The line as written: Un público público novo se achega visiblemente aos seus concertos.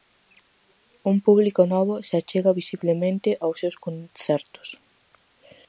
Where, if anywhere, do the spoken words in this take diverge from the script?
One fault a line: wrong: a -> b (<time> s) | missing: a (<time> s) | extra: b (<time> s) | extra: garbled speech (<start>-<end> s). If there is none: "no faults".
missing: público (1.6 s)